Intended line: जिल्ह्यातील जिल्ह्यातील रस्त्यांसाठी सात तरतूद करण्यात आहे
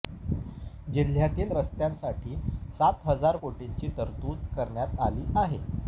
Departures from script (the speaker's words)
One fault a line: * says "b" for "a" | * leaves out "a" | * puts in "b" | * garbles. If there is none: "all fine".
* leaves out "जिल्ह्यातील"
* puts in "हजार कोटींची"
* puts in "आली"